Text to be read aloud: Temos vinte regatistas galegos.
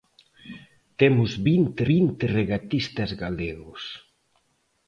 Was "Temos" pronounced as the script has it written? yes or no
yes